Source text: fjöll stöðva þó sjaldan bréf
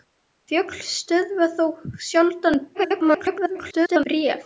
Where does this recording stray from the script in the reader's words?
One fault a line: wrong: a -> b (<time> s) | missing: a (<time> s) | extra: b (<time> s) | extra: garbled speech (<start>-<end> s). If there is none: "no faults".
extra: garbled speech (2.7-4.0 s)